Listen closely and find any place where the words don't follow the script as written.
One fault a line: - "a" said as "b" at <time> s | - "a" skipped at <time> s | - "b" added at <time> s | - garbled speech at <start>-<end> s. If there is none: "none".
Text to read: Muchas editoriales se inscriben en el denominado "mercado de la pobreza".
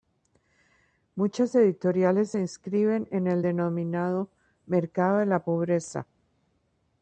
none